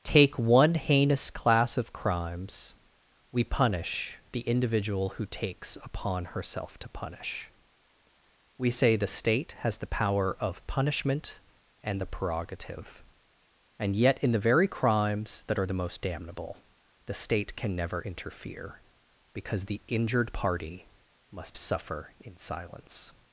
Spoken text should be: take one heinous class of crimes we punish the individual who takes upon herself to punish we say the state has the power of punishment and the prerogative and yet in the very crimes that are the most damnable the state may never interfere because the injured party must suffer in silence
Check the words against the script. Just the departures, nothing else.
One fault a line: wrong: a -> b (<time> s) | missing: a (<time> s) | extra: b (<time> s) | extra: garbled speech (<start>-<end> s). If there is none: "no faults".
wrong: may -> can (17.6 s)